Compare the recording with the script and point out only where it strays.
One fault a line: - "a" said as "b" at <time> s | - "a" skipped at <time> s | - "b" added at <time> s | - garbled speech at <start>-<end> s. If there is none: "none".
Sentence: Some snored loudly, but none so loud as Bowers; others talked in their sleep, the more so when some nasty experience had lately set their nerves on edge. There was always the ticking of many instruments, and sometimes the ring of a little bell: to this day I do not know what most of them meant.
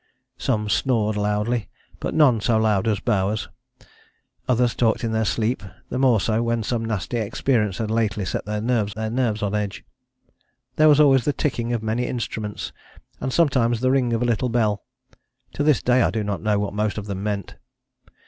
- "their nerves" added at 8.9 s